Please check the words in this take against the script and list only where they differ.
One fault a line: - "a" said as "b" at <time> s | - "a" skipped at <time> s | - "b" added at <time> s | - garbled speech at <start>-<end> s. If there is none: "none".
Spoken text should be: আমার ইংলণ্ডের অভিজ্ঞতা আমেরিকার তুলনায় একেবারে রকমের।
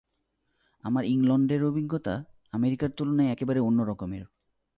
- "অন্য" added at 3.6 s